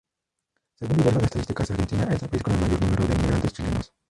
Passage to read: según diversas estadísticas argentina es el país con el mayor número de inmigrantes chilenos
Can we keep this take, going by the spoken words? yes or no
yes